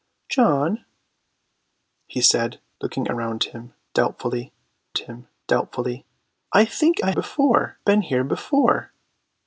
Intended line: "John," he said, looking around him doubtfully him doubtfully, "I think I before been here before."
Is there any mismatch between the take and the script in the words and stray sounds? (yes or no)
no